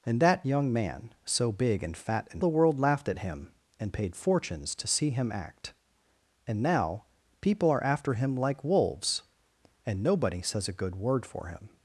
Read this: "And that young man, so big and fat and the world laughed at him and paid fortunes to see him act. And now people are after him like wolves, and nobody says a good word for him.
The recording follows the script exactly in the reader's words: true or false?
true